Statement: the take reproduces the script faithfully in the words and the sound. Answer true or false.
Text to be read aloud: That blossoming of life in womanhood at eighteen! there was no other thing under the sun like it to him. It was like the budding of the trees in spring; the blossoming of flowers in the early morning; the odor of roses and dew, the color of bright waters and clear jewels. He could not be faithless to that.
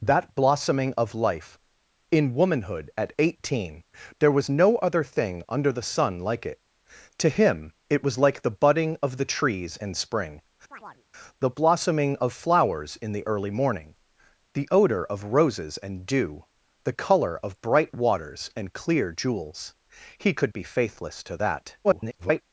false